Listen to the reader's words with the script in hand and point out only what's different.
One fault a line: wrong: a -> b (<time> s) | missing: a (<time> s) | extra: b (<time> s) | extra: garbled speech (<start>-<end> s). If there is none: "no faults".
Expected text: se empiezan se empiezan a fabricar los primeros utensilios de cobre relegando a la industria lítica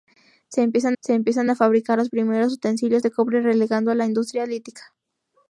no faults